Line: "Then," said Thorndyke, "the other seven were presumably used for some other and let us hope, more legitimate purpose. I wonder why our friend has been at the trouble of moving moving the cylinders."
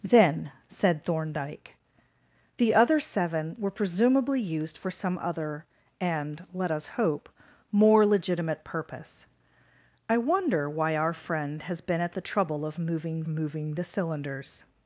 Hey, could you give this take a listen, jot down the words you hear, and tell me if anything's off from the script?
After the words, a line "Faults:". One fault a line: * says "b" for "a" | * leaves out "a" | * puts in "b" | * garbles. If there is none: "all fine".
"Then," said Thorndyke, "the other seven were presumably used for some other and let us hope, more legitimate purpose. I wonder why our friend has been at the trouble of moving moving the cylinders."
Faults:
all fine